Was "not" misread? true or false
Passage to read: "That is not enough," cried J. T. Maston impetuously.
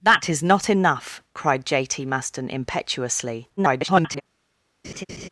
false